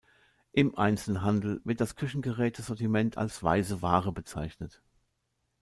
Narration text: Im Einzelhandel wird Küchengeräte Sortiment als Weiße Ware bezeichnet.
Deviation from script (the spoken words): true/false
true